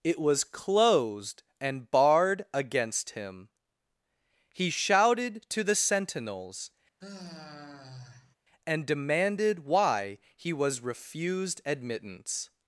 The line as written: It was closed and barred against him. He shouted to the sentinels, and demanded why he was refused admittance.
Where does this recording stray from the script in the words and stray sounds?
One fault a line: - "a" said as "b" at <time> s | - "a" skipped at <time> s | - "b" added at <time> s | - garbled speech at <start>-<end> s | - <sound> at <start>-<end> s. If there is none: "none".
- sigh at 7.0-8.4 s